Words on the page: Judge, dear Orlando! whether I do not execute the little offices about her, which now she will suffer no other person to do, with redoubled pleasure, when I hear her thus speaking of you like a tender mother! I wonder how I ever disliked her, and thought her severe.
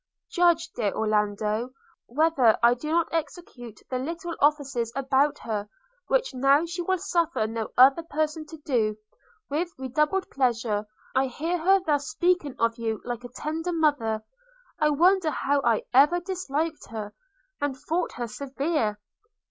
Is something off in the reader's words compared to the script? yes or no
yes